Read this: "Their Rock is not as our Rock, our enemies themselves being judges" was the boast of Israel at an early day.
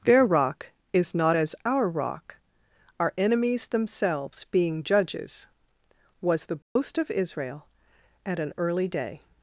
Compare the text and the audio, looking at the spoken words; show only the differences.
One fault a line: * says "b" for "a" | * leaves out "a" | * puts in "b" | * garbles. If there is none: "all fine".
all fine